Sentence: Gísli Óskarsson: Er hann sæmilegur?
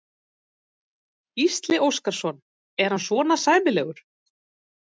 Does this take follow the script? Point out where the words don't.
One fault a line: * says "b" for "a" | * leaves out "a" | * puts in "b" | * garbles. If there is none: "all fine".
* puts in "svona"